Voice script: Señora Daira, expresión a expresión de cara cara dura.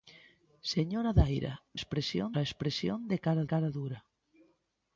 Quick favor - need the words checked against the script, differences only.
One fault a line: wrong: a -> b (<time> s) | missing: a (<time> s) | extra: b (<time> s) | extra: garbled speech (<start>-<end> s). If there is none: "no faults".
no faults